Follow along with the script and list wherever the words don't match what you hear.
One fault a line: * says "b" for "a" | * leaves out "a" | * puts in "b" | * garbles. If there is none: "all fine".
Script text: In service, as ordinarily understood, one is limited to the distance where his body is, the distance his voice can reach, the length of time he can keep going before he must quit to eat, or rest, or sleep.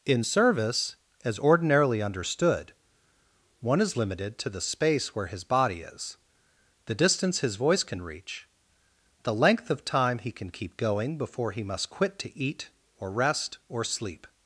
* says "space" for "distance"